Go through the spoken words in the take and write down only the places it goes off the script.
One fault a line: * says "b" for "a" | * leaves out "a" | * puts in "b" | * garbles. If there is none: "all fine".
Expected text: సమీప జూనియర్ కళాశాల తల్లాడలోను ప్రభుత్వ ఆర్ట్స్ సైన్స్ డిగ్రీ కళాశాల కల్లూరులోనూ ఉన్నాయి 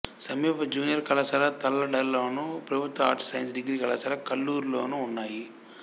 all fine